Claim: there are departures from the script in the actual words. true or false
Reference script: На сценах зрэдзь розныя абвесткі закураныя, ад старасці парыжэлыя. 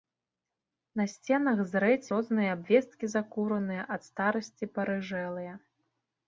false